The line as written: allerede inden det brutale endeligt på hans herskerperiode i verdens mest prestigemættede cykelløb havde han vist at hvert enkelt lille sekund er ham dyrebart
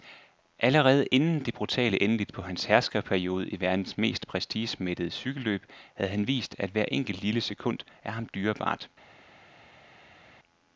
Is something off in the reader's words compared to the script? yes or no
no